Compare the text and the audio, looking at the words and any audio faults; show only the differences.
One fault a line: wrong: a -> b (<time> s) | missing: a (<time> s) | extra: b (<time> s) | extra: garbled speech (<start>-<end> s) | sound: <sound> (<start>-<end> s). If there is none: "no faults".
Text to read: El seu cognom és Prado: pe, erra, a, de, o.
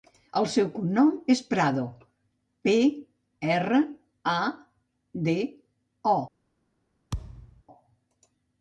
sound: thud (7.1-7.6 s)